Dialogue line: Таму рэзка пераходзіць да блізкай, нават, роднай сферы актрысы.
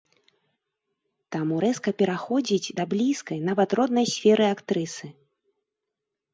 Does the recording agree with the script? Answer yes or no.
yes